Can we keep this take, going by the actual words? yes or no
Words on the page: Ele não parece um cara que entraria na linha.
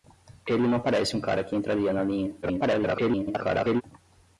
no